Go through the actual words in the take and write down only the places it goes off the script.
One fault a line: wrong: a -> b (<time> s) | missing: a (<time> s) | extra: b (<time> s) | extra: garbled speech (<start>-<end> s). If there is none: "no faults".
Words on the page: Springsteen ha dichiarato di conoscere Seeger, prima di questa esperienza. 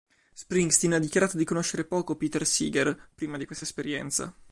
extra: poco Peter (1.9 s)